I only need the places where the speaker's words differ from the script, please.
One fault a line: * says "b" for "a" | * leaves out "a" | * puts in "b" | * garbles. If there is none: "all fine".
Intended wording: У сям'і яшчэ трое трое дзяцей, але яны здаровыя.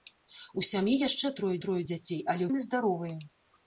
all fine